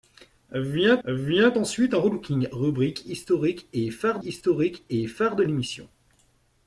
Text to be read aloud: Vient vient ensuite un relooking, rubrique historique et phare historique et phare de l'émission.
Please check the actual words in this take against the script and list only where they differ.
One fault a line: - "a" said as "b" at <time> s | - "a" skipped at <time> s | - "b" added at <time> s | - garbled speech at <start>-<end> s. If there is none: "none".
none